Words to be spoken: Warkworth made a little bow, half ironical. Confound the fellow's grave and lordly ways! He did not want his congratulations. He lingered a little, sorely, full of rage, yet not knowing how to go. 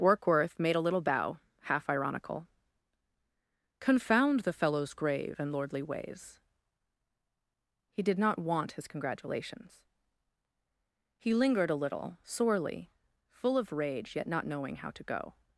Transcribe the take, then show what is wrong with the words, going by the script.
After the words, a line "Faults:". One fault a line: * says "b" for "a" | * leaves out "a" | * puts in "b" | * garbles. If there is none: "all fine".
Warkworth made a little bow, half ironical. Confound the fellow's grave and lordly ways! He did not want his congratulations. He lingered a little, sorely, full of rage, yet not knowing how to go.
Faults:
all fine